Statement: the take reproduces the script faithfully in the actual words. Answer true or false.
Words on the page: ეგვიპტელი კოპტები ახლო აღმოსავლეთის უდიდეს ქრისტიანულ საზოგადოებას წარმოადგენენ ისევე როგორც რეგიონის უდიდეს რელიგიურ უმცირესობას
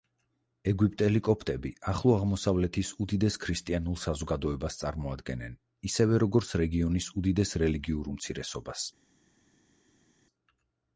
true